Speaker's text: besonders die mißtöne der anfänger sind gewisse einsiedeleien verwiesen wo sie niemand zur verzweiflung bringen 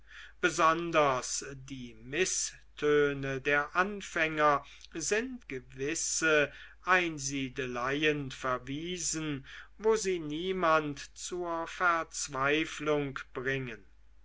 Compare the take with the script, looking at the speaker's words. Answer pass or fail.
pass